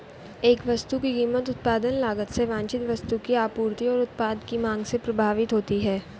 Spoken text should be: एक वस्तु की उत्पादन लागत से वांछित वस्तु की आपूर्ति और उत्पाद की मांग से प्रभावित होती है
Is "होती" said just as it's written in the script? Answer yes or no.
yes